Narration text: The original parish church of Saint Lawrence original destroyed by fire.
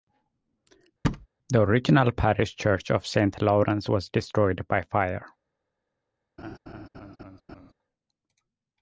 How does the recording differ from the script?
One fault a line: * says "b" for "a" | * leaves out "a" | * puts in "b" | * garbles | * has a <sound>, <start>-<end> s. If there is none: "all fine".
* has a thud, 1.0-1.3 s
* says "was" for "original"
* has a laugh, 6.4-7.7 s